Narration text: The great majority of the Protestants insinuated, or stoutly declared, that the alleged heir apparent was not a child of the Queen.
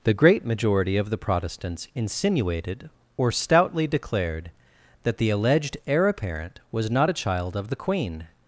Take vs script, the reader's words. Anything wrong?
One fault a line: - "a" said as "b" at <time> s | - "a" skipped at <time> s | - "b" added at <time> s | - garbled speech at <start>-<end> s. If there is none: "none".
none